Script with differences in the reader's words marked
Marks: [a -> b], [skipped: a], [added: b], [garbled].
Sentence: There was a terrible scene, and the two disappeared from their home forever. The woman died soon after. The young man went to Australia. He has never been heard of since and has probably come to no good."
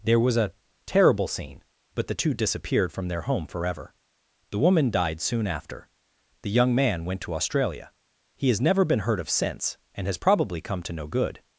There was a terrible scene, [and -> but] the two disappeared from their home forever. The woman died soon after. The young man went to Australia. He has never been heard of since and has probably come to no good."